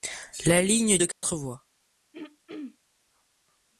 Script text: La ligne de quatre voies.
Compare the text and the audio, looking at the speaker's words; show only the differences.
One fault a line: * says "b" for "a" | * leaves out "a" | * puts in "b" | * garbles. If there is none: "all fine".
all fine